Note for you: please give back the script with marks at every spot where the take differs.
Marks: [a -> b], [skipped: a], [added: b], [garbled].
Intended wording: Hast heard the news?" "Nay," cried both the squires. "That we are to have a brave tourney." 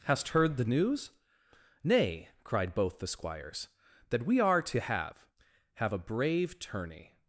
Hast heard the news?" "Nay," cried both the squires. "That we are to have [added: have] a brave tourney."